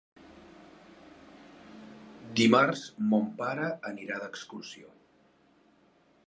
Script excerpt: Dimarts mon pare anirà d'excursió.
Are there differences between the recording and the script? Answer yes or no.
no